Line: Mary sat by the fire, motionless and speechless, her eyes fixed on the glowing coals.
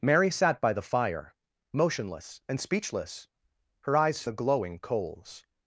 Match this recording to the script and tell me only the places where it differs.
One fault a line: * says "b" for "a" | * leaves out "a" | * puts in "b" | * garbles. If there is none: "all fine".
* leaves out "fixed on"